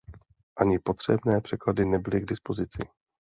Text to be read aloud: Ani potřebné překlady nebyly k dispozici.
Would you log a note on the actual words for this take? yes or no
no